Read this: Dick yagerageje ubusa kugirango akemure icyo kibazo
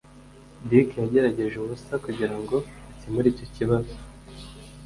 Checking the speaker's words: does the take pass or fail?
pass